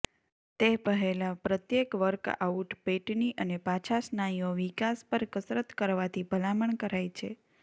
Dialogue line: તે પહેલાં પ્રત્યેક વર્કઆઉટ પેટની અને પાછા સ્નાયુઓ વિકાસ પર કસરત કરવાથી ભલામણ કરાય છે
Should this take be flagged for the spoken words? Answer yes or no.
no